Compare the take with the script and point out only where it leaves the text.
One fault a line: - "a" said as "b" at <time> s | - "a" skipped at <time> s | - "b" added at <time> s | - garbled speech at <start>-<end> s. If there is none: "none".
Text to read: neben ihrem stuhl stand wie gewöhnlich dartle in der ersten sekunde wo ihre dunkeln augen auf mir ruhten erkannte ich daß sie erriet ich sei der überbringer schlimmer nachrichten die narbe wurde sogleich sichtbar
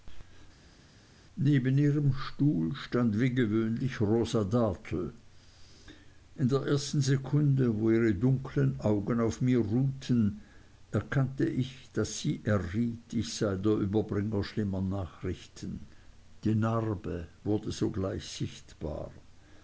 - "rosa" added at 4.0 s